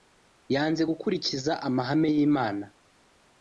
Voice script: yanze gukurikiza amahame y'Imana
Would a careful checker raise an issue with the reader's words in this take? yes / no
no